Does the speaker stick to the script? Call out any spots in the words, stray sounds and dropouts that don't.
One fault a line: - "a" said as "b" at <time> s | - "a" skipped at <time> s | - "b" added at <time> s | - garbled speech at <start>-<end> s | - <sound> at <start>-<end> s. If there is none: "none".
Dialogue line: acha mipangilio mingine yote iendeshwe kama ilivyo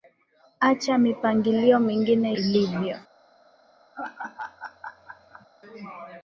- "yote iendeshwe kama" skipped at 2.4 s
- laugh at 3.9-5.5 s